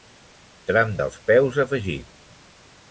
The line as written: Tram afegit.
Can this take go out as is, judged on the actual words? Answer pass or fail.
fail